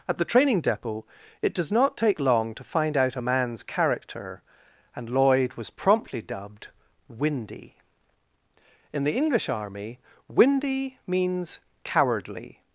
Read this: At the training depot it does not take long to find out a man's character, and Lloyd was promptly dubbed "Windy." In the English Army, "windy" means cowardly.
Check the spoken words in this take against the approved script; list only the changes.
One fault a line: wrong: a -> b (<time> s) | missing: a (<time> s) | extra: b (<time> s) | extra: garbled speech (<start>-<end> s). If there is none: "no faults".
no faults